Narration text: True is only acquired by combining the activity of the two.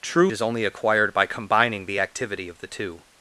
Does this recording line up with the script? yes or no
yes